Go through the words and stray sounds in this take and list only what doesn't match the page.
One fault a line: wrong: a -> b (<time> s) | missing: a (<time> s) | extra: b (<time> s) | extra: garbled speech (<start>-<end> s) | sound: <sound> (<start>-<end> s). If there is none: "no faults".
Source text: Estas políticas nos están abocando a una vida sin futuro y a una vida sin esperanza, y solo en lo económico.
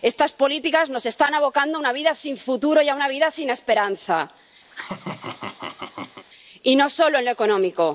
sound: laugh (4.7-6.3 s)
extra: no (6.7 s)